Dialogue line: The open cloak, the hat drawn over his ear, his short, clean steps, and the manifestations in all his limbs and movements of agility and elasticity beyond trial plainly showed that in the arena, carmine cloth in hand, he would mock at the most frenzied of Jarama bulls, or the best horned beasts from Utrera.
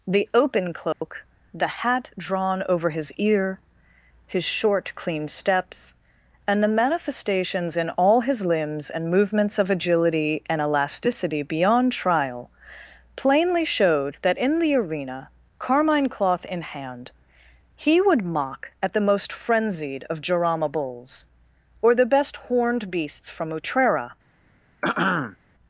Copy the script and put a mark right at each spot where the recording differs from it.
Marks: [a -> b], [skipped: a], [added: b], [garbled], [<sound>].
The open cloak, [dropout] the hat drawn over his ear, his short, clean steps, and the manifestations in all his limbs and movements of agility and elasticity beyond trial plainly showed that in the arena, carmine cloth in hand, he would mock at the most frenzied of Jarama bulls, or the best horned beasts from Utrera. [throat clearing]